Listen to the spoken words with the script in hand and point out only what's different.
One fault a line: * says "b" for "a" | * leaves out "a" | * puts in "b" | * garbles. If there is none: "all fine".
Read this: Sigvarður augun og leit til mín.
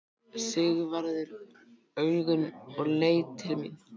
all fine